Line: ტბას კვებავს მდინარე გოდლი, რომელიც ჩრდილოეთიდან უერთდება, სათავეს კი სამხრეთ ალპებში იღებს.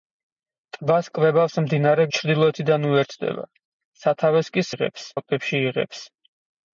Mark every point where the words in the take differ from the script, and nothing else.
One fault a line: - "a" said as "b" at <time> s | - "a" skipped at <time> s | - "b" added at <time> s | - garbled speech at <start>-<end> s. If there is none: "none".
- "გოდლი რომელიც" skipped at 2.0 s
- "სამხრეთ" said as "იღებს" at 4.7 s